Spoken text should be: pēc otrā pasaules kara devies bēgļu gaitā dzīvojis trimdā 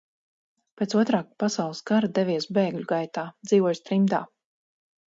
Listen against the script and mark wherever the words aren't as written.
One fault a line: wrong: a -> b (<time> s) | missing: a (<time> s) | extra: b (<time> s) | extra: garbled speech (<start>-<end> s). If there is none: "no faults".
no faults